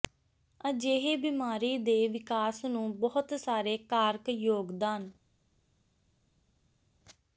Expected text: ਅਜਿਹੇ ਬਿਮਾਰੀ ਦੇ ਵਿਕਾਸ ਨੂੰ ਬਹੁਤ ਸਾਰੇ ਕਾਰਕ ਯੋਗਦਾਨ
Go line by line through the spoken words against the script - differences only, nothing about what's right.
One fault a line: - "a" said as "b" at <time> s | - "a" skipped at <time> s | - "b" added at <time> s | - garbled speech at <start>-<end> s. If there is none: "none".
none